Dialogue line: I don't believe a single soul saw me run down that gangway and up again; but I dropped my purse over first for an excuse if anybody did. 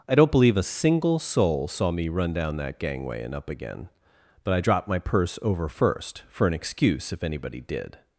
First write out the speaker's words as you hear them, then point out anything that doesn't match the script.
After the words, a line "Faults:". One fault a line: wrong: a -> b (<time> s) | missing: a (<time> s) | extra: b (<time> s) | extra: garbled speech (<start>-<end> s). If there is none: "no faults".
I don't believe a single soul saw me run down that gangway and up again; but I dropped my purse over first for an excuse if anybody did.
Faults:
no faults